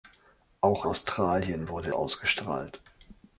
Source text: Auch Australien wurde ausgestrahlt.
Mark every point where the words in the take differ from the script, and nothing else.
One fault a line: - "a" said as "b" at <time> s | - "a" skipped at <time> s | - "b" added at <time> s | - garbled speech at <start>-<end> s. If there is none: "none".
none